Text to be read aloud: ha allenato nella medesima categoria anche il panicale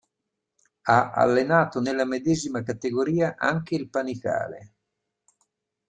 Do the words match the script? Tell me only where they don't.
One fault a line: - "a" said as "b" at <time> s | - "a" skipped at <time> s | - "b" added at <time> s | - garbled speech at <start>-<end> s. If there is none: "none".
none